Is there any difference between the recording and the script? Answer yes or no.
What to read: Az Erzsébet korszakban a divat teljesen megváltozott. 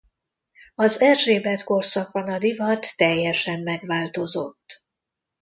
no